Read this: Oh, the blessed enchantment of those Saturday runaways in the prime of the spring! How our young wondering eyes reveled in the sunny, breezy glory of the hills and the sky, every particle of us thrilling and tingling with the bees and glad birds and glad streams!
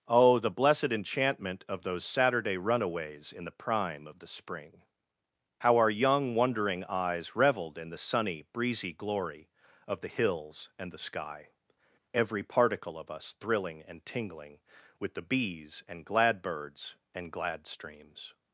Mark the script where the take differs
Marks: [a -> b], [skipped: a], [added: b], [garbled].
Oh, the blessed enchantment of those Saturday runaways in the prime of the spring! How our young wondering eyes reveled in the sunny, breezy glory of the hills and the sky, every particle of us thrilling and tingling with the bees and glad birds and glad streams!